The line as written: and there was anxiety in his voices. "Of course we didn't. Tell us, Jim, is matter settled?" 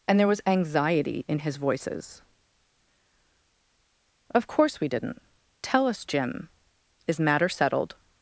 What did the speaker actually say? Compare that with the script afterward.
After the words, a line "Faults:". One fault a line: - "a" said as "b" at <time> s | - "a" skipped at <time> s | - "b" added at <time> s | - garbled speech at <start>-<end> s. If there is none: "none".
and there was anxiety in his voices. "Of course we didn't. Tell us, Jim, is matter settled?"
Faults:
none